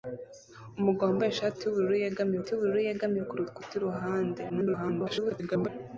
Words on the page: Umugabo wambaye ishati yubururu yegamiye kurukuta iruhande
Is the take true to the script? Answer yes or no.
no